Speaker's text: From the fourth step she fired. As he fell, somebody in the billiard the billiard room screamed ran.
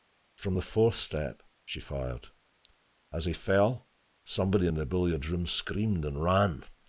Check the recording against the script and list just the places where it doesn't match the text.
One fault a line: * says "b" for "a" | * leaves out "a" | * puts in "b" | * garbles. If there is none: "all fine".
* leaves out "the billiard"
* puts in "and"